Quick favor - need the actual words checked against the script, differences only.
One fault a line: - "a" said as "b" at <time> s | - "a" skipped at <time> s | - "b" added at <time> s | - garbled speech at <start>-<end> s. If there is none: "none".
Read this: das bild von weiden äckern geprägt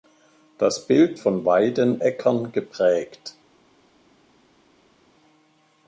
none